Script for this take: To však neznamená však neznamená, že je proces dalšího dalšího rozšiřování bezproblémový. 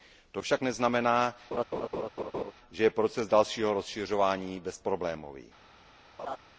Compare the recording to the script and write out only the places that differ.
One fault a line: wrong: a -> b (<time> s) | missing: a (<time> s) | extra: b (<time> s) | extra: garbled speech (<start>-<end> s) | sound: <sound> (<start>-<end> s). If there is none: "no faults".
missing: však neznamená (1.4 s)
sound: laugh (1.5-2.5 s)
missing: dalšího (3.7 s)
sound: laugh (6.2-6.4 s)